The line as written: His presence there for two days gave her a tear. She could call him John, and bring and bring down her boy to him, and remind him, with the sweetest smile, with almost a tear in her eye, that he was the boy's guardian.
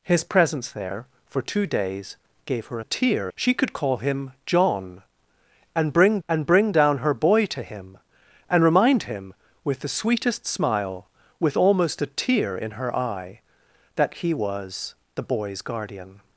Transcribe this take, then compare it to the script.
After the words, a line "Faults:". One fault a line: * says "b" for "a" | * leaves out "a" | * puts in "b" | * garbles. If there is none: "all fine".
His presence there for two days gave her a tear. She could call him John, and bring and bring down her boy to him, and remind him, with the sweetest smile, with almost a tear in her eye, that he was the boy's guardian.
Faults:
all fine